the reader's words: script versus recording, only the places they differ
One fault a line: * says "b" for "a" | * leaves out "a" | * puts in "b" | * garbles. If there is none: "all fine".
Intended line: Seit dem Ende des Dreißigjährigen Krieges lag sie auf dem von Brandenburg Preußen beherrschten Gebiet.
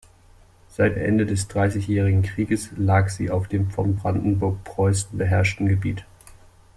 * leaves out "dem"